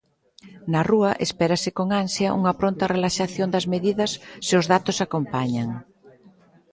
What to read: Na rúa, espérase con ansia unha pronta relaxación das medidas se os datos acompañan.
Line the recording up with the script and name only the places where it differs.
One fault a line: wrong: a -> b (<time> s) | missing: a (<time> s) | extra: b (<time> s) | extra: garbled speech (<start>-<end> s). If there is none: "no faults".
no faults